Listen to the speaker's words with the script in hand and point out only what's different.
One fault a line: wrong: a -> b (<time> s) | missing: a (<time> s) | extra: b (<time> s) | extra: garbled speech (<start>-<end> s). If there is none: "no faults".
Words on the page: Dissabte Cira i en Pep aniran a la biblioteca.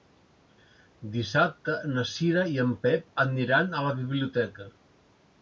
extra: na (1.9 s)